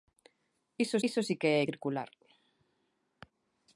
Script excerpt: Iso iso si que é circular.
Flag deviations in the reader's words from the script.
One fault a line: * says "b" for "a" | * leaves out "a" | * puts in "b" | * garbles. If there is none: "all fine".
all fine